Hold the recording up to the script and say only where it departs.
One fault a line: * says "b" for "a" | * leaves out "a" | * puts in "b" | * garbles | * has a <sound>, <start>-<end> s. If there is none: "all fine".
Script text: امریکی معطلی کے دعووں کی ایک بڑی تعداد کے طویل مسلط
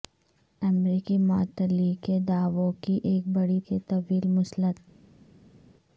* leaves out "تعداد"